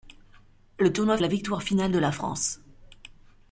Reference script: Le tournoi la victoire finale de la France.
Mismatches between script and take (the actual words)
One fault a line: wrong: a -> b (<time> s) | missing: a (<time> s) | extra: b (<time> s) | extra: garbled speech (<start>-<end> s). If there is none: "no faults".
no faults